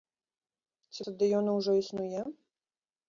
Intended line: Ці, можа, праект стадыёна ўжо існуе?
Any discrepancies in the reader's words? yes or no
yes